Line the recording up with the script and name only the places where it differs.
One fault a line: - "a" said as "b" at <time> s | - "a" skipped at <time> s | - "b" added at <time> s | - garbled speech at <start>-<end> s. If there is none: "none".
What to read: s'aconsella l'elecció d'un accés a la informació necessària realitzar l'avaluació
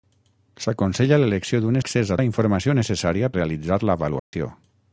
none